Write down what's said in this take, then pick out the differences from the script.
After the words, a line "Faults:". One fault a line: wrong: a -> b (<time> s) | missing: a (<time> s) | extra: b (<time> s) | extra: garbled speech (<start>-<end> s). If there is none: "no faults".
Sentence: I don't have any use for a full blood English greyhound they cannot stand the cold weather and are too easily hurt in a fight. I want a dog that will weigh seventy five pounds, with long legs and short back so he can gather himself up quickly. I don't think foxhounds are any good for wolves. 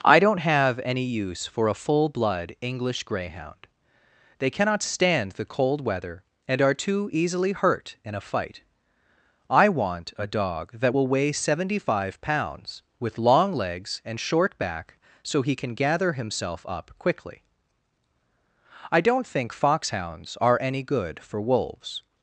I don't have any use for a full blood English greyhound they cannot stand the cold weather and are too easily hurt in a fight. I want a dog that will weigh seventy five pounds, with long legs and short back so he can gather himself up quickly. I don't think foxhounds are any good for wolves.
Faults:
no faults